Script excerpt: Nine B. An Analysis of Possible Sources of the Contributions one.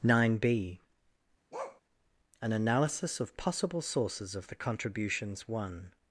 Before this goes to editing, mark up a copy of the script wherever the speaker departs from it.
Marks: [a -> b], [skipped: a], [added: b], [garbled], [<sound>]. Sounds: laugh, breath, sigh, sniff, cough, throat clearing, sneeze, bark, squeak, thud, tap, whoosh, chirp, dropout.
Nine B. [bark] An Analysis of Possible Sources of the Contributions one.